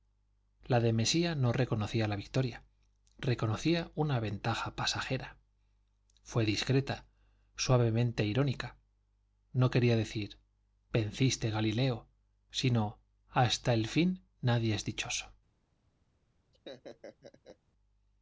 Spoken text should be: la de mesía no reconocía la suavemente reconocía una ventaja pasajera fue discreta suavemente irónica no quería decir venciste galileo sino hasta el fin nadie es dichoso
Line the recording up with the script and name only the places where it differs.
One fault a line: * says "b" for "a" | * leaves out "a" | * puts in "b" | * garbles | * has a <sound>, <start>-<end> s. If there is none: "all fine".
* says "victoria" for "suavemente"
* has a laugh, 16.5-17.6 s